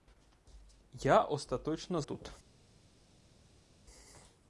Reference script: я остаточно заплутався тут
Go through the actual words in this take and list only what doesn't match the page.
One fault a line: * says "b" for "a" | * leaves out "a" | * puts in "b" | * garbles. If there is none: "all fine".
* leaves out "заплутався"